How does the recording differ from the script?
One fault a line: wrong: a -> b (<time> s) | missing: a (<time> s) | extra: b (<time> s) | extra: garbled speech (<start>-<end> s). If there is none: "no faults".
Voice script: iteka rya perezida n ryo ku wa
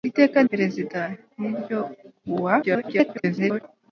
missing: rya (0.4 s)
extra: garbled speech (2.6-3.6 s)